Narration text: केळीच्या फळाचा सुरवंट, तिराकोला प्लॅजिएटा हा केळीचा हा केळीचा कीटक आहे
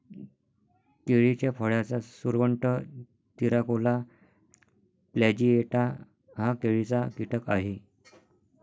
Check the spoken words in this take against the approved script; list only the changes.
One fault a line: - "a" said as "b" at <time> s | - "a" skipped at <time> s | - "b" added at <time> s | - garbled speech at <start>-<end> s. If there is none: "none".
- "हा केळीचा" skipped at 7.1 s